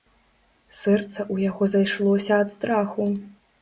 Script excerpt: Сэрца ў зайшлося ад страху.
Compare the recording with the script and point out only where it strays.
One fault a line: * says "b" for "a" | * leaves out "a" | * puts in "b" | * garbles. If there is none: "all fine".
* puts in "яго"